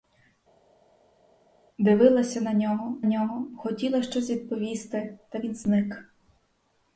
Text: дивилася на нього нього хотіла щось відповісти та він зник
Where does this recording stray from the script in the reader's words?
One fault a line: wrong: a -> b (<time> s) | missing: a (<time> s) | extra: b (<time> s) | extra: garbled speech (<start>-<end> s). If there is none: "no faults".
no faults